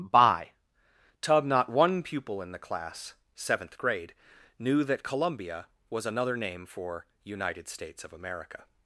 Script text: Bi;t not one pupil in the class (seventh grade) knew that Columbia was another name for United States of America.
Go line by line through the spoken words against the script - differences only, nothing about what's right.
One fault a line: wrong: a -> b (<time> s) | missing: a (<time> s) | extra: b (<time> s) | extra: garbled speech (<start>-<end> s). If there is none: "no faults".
wrong: Bi;t -> By tub (0.1 s)